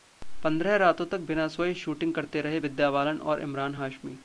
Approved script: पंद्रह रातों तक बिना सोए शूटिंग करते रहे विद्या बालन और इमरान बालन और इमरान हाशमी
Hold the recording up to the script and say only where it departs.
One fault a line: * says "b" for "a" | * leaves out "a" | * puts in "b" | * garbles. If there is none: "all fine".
* leaves out "बालन और इमरान"